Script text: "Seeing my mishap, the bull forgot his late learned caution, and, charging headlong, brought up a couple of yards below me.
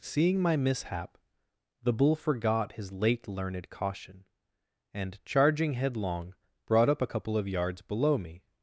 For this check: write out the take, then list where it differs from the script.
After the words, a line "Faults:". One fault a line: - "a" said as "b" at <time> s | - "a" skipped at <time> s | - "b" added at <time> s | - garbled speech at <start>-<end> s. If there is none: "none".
"Seeing my mishap, the bull forgot his late learned caution, and, charging headlong, brought up a couple of yards below me.
Faults:
none